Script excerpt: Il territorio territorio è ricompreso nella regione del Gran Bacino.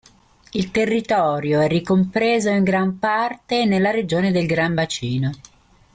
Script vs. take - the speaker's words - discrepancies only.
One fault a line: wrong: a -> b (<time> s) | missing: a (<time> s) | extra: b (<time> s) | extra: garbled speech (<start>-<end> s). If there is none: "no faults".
missing: territorio (1.6 s)
extra: in gran parte (2.5 s)